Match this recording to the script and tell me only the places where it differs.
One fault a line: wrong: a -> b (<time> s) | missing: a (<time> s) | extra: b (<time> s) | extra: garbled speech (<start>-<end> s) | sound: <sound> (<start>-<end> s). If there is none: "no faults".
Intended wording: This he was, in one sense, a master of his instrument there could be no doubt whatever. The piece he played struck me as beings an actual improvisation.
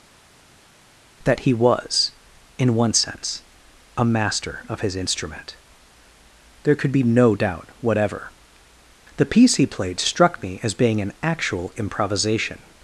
wrong: This -> That (1.2 s)
wrong: beings -> being (10.7 s)